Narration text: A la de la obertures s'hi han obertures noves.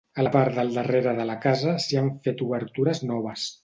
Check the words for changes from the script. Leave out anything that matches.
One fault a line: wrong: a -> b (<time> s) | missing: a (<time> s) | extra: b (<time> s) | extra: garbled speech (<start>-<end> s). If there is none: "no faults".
extra: part del darrere (0.3 s)
wrong: obertures -> casa (1.5 s)
extra: fet (2.3 s)